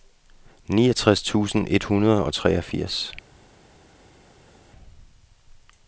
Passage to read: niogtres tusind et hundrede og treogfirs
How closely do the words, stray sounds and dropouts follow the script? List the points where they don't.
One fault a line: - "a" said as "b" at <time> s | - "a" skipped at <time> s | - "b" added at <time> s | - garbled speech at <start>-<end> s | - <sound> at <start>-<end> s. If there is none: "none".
none